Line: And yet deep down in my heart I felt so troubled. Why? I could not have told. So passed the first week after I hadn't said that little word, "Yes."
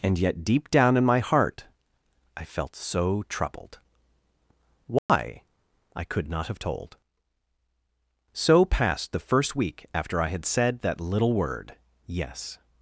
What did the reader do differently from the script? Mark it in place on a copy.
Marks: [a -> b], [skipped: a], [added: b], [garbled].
And yet deep down in my heart I felt so troubled. Why? I could not have told. So passed the first week after I [hadn't -> had] said that little word, "Yes."